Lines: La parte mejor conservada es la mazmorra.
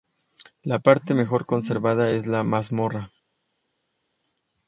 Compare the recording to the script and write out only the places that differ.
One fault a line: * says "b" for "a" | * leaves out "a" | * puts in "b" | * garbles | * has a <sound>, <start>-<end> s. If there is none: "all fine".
all fine